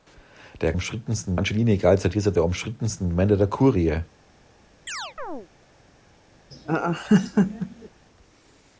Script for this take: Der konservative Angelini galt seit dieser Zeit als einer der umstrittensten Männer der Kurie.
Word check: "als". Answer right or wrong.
wrong